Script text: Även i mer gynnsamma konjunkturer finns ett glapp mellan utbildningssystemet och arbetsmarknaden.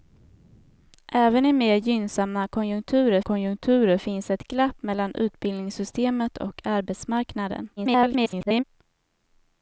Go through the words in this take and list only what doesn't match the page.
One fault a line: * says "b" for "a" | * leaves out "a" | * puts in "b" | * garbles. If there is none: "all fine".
* puts in "konjunkturer"
* garbles